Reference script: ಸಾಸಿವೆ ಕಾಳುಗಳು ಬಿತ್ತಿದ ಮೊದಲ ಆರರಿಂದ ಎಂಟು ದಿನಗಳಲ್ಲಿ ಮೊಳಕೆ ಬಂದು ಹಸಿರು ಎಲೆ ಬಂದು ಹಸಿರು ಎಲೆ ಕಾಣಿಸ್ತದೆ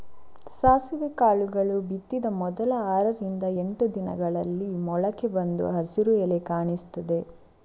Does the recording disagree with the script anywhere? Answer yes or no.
yes